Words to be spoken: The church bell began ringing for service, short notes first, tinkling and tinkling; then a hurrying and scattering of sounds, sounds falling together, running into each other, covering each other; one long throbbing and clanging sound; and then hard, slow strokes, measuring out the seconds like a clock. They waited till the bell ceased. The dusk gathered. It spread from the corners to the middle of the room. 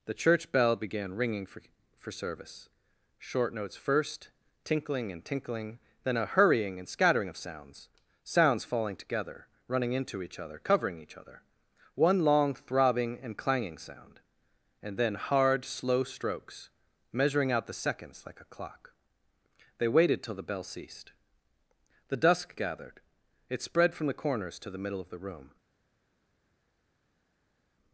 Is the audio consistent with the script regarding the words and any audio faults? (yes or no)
no